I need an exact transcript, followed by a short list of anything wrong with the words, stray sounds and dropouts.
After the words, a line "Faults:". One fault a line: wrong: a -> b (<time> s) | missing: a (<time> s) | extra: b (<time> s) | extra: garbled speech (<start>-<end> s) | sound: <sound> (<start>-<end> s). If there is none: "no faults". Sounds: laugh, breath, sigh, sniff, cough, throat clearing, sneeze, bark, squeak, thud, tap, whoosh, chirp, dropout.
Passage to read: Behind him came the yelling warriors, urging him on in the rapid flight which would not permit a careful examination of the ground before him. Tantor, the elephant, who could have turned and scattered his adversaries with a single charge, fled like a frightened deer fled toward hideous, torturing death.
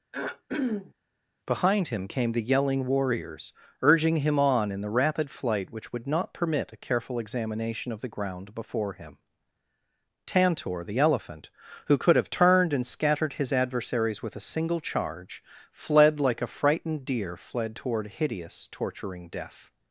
Behind him came the yelling warriors, urging him on in the rapid flight which would not permit a careful examination of the ground before him. Tantor, the elephant, who could have turned and scattered his adversaries with a single charge, fled like a frightened deer fled toward hideous, torturing death.
Faults:
sound: throat clearing (0.1-0.9 s)